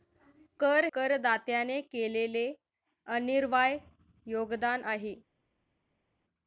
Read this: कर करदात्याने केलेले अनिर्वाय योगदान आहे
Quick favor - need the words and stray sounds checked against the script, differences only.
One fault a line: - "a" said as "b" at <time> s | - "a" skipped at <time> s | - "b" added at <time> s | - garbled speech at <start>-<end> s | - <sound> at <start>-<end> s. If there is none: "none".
none